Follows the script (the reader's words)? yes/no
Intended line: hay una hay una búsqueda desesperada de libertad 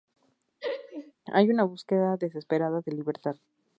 no